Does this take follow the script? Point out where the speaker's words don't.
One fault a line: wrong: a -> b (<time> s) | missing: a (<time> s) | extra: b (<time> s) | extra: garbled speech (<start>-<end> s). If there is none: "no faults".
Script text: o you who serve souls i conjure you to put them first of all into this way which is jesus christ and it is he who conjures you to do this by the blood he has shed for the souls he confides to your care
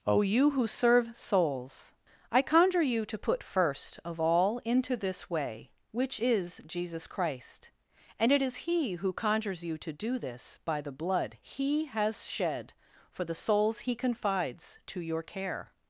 missing: them (3.4 s)